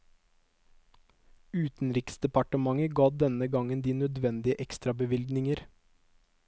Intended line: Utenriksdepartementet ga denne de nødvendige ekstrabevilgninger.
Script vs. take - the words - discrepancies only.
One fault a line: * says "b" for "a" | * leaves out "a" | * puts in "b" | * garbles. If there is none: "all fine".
* puts in "gangen"